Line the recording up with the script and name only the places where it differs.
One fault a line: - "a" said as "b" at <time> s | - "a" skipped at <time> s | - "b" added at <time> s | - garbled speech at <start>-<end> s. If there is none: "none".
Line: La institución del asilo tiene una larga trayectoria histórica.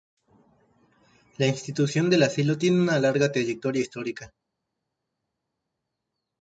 none